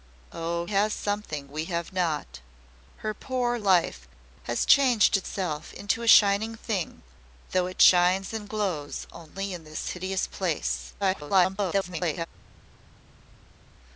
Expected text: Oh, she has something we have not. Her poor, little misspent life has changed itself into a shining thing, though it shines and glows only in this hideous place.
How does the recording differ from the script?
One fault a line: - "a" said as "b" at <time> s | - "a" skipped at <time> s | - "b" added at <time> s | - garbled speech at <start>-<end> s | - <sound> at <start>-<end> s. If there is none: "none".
- "she" skipped at 0.7 s
- "little misspent" skipped at 3.6 s
- garbled speech at 11.0-12.3 s